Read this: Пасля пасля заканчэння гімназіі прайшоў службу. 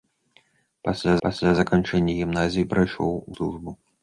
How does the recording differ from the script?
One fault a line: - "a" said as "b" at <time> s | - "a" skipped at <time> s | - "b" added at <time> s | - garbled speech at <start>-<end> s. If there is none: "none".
none